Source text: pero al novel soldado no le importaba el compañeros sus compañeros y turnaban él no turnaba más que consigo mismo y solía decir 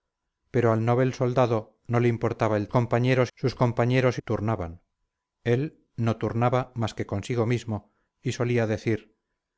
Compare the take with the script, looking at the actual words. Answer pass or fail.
pass